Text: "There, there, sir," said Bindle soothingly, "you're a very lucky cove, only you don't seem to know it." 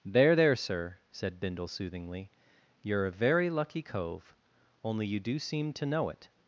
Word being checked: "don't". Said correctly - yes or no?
no